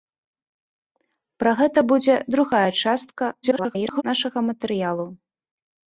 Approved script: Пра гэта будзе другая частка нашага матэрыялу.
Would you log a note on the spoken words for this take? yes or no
yes